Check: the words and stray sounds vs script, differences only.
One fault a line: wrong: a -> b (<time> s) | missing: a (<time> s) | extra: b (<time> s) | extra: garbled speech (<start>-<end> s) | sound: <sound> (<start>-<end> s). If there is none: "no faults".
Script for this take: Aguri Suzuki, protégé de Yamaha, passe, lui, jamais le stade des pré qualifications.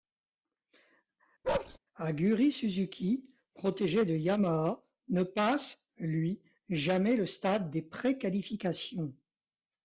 sound: bark (1.4-1.8 s)
extra: ne (5.1 s)